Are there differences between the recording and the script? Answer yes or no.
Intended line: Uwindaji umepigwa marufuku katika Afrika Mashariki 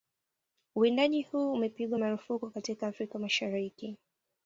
yes